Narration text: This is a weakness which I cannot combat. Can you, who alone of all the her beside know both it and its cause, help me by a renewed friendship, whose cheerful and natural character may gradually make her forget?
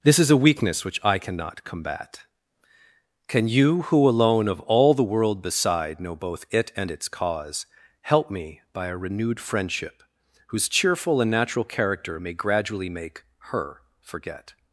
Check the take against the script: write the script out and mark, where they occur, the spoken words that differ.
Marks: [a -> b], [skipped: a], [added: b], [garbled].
This is a weakness which I cannot combat. Can you, who alone of all the [her -> world] beside know both it and its cause, help me by a renewed friendship, whose cheerful and natural character may gradually make her forget?